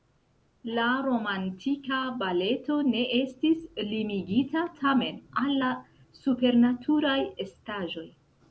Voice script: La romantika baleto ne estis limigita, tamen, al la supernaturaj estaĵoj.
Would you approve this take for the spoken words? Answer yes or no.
yes